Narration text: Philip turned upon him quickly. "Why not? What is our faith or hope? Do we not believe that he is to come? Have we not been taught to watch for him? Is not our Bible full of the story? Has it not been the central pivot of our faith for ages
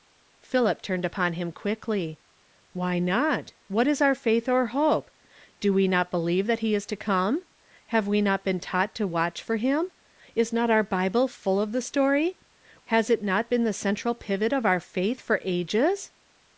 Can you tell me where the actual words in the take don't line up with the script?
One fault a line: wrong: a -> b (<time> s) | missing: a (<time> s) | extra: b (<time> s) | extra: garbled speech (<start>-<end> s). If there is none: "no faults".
no faults